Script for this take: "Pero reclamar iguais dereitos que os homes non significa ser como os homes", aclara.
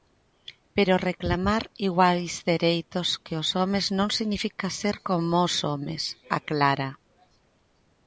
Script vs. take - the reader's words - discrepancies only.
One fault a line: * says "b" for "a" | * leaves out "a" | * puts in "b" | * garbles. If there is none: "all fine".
all fine